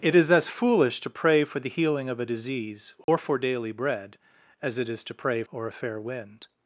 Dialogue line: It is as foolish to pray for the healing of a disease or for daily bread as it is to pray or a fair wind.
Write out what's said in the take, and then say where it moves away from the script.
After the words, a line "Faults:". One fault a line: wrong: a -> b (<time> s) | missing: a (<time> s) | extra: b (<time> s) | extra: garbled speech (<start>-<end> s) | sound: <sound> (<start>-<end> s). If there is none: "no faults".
It is as foolish to pray for the healing of a disease or for daily bread as it is to pray or a fair wind.
Faults:
sound: dropout (3.0-3.1 s)